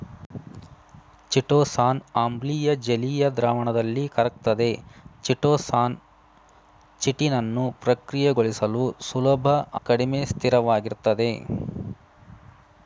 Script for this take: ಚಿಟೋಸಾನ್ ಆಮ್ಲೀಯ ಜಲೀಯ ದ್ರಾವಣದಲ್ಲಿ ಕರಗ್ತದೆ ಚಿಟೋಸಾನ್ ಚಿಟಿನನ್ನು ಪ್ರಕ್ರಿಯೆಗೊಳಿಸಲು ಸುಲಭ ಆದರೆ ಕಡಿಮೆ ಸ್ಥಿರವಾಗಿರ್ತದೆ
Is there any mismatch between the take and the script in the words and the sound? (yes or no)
yes